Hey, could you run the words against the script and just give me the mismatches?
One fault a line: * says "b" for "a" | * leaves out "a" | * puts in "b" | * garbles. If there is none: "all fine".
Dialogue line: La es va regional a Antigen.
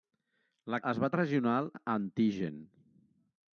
all fine